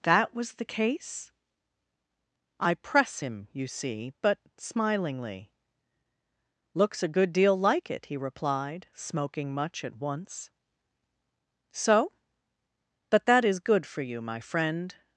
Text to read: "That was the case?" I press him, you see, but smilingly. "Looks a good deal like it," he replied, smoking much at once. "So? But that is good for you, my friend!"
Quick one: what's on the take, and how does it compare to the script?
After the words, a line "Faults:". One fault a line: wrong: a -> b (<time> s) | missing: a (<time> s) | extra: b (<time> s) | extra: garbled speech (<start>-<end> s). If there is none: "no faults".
"That was the case?" I press him, you see, but smilingly. "Looks a good deal like it," he replied, smoking much at once. "So? But that is good for you, my friend!"
Faults:
no faults